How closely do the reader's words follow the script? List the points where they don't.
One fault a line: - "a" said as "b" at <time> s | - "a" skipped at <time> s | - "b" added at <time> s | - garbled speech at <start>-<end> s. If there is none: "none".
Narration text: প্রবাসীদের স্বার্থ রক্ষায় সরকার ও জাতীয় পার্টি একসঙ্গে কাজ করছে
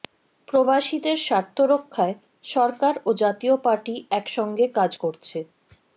none